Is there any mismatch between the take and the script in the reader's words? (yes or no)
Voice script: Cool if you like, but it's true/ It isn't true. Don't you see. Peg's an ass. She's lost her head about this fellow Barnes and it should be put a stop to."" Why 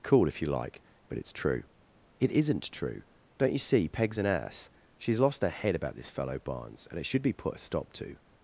yes